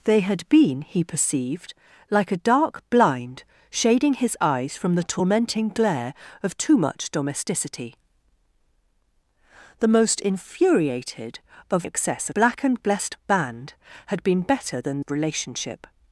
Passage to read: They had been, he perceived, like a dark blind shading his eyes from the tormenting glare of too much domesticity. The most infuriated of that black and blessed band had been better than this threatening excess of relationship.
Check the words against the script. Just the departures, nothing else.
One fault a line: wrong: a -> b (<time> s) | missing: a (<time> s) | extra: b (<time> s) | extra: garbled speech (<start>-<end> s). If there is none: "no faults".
wrong: that -> excess (11.8 s)
missing: this threatening excess (15.0 s)